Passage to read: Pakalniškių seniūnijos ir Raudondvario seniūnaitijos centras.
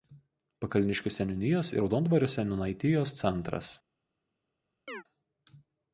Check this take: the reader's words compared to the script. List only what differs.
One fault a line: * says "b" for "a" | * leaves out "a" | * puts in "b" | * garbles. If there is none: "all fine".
all fine